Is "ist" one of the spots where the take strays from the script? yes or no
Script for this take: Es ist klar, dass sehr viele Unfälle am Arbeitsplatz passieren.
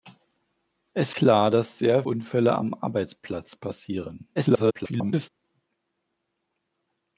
yes